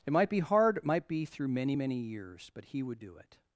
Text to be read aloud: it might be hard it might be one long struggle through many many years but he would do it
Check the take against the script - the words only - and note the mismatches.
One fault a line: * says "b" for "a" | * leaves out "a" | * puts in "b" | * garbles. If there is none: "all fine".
* leaves out "one long struggle"